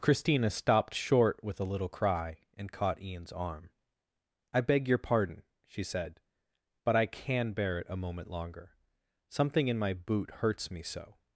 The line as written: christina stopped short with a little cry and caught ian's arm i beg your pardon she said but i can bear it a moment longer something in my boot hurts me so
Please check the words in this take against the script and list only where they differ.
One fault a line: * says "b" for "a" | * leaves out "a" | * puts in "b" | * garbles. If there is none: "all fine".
all fine